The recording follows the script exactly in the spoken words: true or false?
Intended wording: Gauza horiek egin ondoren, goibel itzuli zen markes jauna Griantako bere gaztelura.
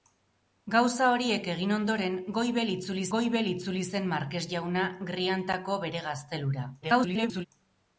false